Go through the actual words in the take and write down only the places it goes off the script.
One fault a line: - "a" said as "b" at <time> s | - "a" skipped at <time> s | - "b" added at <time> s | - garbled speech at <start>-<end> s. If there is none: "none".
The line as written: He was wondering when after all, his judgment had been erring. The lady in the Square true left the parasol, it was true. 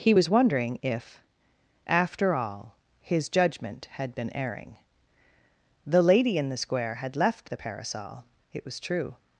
- "when" said as "if" at 0.8 s
- "true" said as "had" at 7.0 s